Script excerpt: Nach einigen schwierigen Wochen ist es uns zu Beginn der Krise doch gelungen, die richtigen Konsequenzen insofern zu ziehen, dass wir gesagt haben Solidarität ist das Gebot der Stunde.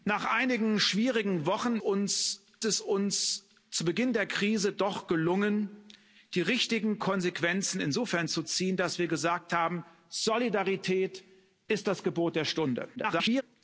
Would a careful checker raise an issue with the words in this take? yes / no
yes